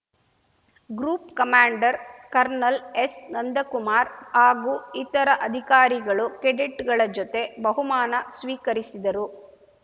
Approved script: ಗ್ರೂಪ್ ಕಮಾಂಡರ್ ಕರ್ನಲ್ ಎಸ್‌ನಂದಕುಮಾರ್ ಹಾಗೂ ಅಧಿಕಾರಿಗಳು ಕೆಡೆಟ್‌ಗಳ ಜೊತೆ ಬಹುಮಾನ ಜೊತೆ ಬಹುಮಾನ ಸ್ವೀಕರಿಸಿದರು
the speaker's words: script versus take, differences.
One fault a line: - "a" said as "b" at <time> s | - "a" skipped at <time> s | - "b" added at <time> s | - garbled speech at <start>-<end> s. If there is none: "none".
- "ಇತರ" added at 5.0 s
- "ಜೊತೆ ಬಹುಮಾನ" skipped at 8.2 s